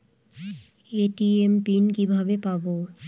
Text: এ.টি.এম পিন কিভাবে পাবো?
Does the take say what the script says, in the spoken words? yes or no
yes